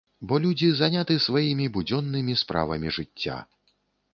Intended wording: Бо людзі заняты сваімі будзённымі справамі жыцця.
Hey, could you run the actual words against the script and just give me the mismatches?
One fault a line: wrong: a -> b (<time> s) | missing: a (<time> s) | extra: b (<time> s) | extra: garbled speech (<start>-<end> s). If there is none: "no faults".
no faults